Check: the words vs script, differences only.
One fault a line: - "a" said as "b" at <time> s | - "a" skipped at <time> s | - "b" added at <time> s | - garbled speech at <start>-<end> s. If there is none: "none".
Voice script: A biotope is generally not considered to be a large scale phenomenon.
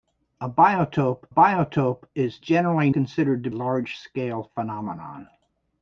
- "biotope" added at 1.3 s
- "not" skipped at 2.9 s
- "be" skipped at 3.5 s